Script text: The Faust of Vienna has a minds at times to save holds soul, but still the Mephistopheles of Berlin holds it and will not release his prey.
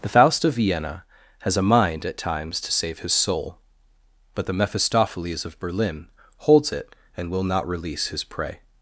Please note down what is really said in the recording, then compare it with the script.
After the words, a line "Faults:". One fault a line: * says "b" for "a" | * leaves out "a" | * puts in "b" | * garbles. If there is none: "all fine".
The Faust of Vienna has a mind at times to save his soul, but the Mephistopheles of Berlin holds it and will not release his prey.
Faults:
* says "mind" for "minds"
* says "his" for "holds"
* leaves out "still"